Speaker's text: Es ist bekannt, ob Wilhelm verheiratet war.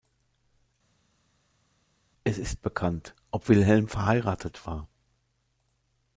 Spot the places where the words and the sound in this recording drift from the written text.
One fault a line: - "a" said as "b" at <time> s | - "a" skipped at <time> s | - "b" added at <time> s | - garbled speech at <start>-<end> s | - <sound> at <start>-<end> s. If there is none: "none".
none